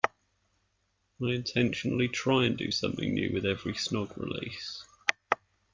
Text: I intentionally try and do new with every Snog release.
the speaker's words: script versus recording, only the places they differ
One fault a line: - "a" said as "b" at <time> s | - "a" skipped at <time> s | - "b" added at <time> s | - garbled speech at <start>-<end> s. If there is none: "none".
- "something" added at 2.7 s